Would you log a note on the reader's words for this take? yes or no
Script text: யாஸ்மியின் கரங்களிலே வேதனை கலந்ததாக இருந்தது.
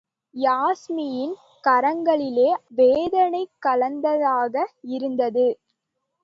no